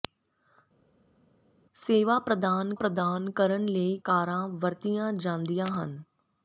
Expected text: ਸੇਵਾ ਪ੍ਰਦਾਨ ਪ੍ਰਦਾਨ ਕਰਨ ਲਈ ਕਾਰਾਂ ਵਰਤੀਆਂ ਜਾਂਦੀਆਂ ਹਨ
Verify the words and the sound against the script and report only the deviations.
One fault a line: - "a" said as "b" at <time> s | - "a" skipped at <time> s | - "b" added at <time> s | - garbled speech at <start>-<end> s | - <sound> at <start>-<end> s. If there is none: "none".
none